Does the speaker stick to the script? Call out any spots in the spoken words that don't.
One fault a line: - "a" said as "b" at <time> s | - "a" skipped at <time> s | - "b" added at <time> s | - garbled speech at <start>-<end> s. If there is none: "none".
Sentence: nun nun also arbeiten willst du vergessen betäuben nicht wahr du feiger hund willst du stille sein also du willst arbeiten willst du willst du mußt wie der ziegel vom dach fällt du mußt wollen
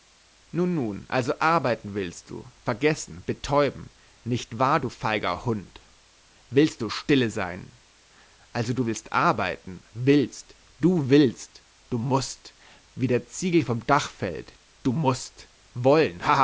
none